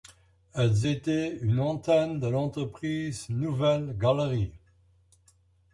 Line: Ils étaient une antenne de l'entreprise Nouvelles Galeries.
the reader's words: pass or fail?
fail